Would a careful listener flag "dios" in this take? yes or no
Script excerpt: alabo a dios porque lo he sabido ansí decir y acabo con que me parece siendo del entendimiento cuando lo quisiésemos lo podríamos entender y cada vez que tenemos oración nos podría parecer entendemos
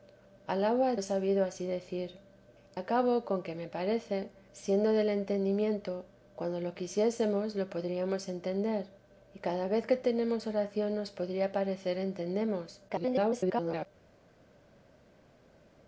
yes